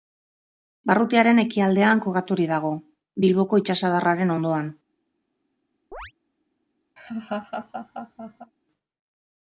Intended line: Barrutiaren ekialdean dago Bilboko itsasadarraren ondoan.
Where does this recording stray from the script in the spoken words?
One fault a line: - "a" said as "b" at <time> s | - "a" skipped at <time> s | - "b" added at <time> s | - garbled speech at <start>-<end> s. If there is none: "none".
- "kokaturik" added at 2.1 s